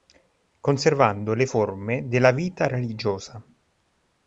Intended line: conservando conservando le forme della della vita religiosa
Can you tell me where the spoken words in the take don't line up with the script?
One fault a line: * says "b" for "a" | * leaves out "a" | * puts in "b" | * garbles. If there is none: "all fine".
* leaves out "conservando"
* leaves out "della"